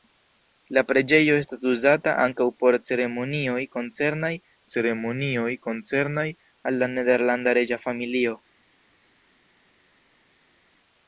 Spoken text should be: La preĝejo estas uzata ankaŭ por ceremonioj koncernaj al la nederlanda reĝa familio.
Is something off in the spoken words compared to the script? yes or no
yes